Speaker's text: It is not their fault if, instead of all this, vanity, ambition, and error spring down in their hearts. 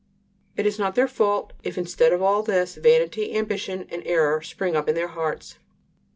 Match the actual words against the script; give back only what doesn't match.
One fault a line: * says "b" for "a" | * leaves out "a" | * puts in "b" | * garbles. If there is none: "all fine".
* says "up" for "down"